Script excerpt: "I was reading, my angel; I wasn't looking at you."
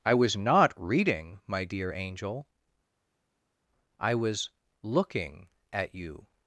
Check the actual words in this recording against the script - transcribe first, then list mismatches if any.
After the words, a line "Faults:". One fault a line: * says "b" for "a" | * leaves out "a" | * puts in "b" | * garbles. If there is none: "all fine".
"I was not reading, my dear angel; I was looking at you."
Faults:
* puts in "not"
* puts in "dear"
* says "was" for "wasn't"